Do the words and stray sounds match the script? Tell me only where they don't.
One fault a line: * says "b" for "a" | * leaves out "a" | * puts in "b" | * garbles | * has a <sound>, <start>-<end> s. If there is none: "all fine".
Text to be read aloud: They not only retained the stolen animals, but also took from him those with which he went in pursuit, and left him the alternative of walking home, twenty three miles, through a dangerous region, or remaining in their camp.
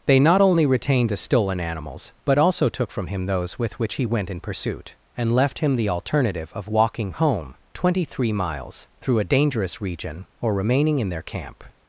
all fine